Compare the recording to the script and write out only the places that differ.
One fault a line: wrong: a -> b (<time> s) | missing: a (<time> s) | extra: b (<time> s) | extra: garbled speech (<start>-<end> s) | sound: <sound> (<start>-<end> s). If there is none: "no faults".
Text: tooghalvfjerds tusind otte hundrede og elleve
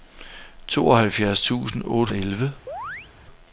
missing: hundrede (2.1 s)
sound: chirp (2.7-3.1 s)